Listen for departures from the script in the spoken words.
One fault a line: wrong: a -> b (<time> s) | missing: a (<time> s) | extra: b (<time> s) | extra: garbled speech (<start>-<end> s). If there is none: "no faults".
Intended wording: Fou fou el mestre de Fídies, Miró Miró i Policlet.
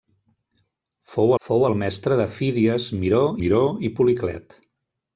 no faults